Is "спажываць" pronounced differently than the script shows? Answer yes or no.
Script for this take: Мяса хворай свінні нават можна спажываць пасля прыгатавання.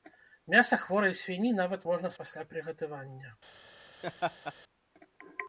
yes